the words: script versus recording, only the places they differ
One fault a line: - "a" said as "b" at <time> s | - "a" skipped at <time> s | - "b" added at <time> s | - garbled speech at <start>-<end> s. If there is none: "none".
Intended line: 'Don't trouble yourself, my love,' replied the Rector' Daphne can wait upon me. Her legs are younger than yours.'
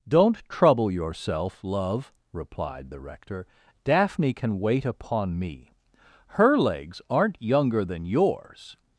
- "my" skipped at 1.6 s
- "are" said as "aren't" at 7.1 s